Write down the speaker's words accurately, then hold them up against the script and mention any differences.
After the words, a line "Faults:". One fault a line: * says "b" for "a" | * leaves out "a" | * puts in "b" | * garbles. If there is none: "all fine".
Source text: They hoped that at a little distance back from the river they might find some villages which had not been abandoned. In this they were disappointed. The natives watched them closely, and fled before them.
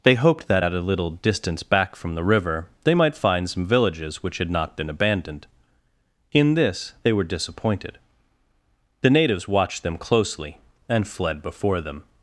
They hoped that at a little distance back from the river they might find some villages which had not been abandoned. In this they were disappointed. The natives watched them closely, and fled before them.
Faults:
all fine